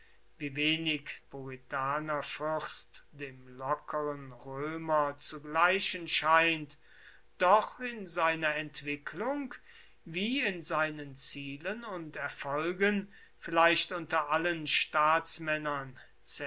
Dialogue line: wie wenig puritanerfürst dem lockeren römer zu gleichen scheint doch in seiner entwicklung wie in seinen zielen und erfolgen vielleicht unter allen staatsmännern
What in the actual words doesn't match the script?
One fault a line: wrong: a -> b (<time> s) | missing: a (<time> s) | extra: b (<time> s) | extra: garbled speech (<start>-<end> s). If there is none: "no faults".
no faults